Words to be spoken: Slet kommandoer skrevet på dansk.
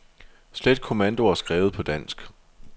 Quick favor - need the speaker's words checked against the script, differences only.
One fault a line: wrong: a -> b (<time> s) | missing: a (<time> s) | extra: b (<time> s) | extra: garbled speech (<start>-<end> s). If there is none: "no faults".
no faults